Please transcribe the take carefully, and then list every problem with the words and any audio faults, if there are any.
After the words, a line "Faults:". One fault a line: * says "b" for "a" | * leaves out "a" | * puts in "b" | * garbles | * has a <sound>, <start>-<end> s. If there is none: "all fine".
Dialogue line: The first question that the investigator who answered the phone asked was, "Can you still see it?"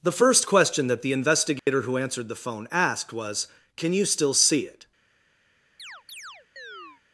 The first question that the investigator who answered the phone asked was, "Can you still see it?"
Faults:
* has a dropout, 1.6-1.7 s
* has a chirp, 5.8-7.0 s